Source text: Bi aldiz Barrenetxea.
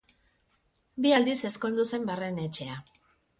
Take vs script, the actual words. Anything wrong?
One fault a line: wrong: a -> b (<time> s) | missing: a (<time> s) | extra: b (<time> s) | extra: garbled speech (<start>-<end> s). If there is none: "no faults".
extra: ezkondu zen (1.5 s)